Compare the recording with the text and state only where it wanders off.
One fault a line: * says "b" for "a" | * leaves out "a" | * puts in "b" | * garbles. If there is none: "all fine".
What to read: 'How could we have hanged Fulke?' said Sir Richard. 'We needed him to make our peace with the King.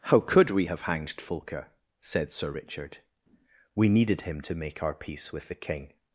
all fine